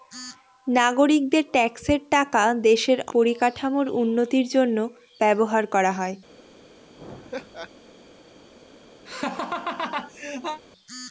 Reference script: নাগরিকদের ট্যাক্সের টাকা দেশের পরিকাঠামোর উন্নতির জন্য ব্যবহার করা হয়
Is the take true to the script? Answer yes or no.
yes